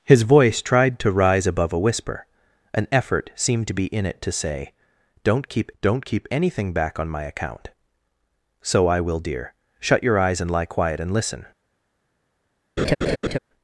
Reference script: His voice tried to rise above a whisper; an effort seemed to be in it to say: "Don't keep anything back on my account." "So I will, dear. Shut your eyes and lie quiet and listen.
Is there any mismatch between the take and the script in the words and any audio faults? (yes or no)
yes